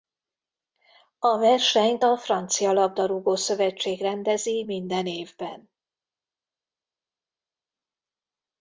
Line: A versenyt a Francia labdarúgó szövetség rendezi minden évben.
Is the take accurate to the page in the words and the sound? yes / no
yes